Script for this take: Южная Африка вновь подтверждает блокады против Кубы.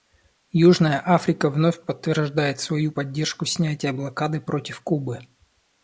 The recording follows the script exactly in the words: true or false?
false